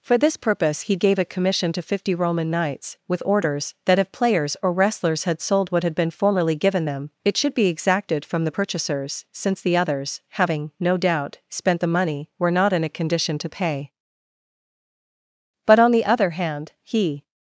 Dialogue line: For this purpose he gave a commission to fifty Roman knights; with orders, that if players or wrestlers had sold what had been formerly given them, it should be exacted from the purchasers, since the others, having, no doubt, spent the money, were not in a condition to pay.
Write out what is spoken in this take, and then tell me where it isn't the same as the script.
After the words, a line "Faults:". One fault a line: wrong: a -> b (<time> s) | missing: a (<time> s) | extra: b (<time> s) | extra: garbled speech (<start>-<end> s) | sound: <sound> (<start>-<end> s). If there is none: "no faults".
For this purpose he gave a commission to fifty Roman knights; with orders, that if players or wrestlers had sold what had been formerly given them, it should be exacted from the purchasers, since the others, having, no doubt, spent the money, were not in a condition to pay. But on the other hand, he
Faults:
extra: But on the other hand he (15.7 s)